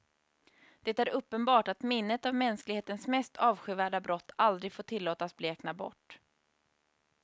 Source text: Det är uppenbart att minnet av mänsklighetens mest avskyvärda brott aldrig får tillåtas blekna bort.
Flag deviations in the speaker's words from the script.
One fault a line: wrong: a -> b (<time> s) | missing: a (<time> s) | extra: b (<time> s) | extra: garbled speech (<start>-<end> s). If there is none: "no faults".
no faults